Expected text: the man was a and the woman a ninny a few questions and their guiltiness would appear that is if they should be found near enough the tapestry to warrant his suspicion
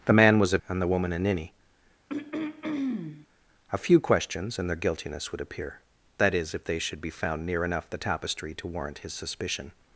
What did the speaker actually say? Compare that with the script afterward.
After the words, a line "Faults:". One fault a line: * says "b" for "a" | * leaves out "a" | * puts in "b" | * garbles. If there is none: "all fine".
the man was a and the woman a ninny a few questions and their guiltiness would appear that is if they should be found near enough the tapestry to warrant his suspicion
Faults:
all fine